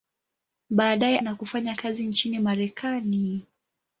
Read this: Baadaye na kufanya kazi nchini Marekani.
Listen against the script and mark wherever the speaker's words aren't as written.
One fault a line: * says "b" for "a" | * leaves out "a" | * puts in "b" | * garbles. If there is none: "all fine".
all fine